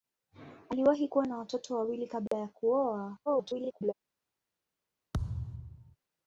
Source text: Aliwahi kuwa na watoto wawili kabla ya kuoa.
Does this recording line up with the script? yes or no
no